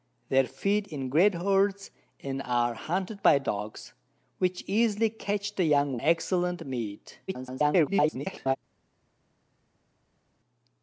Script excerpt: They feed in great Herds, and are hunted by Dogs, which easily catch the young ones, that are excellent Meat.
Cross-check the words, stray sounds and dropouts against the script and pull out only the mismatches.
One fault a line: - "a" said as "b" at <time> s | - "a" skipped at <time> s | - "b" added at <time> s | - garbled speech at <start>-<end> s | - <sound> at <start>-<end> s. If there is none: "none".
- "ones that are" skipped at 6.0 s
- garbled speech at 7.3-8.6 s